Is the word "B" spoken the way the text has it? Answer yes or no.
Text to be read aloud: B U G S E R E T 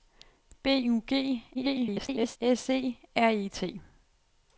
yes